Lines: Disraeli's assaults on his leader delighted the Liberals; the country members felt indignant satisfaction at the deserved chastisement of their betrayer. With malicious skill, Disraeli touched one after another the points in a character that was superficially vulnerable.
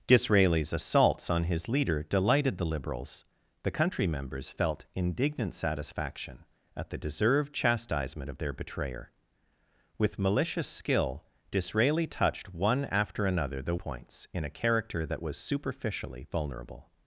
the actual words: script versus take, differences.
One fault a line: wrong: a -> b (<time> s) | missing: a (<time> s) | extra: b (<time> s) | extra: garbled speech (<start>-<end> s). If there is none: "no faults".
no faults